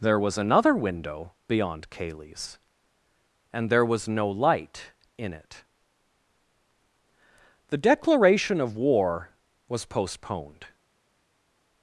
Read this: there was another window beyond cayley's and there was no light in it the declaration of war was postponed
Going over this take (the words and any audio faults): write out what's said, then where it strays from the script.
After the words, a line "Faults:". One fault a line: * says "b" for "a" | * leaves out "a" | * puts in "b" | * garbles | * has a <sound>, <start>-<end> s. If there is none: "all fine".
there was another window beyond cayley's and there was no light in it the declaration of war was postponed
Faults:
all fine